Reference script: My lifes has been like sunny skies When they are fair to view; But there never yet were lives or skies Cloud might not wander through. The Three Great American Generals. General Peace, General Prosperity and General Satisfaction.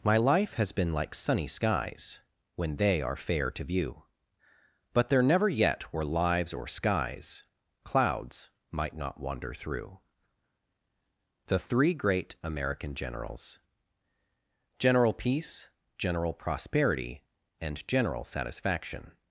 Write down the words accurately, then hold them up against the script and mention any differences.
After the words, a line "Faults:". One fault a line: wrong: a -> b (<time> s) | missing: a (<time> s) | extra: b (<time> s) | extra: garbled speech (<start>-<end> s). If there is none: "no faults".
My life has been like sunny skies When they are fair to view; But there never yet were lives or skies Clouds might not wander through. The Three Great American Generals. General Peace, General Prosperity and General Satisfaction.
Faults:
wrong: lifes -> life (0.2 s)
wrong: Cloud -> Clouds (7.8 s)